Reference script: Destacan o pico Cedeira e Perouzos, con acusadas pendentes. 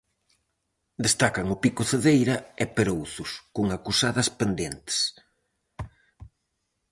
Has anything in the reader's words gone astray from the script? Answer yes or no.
no